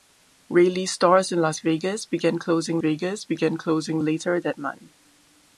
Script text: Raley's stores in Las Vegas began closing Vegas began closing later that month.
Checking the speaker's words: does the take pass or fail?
pass